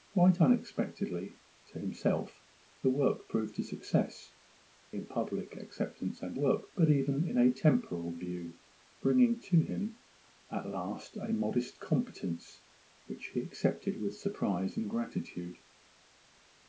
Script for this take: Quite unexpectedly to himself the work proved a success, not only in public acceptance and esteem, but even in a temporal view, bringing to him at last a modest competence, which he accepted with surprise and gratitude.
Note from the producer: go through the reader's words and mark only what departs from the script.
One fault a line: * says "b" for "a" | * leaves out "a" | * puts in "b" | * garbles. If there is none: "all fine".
* leaves out "not only"
* says "work" for "esteem"